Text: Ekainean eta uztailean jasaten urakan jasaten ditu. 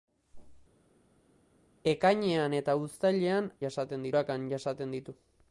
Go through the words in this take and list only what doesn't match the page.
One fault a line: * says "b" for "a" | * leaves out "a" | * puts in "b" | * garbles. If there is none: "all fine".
all fine